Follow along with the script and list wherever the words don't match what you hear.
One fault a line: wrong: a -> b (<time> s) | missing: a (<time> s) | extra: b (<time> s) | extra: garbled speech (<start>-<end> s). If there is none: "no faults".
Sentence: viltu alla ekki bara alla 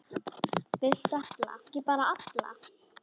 no faults